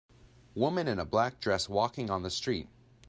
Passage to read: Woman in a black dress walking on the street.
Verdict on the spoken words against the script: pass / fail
pass